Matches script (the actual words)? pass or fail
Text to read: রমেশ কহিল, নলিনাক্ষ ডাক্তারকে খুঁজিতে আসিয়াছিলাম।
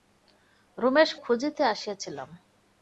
fail